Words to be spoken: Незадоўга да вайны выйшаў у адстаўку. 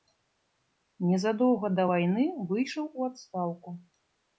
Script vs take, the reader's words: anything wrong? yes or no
no